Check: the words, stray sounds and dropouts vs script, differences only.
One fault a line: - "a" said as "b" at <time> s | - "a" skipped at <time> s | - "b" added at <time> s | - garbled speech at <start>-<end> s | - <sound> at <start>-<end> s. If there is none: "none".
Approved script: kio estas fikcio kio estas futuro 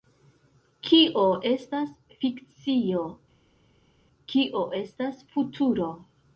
none